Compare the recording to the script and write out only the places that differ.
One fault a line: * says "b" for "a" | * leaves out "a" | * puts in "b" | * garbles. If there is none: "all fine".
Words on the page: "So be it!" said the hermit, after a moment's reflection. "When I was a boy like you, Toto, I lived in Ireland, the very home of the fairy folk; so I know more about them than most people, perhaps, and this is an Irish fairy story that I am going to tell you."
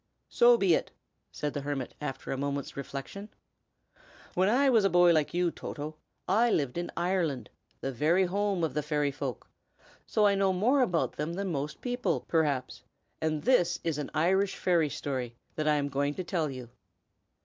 all fine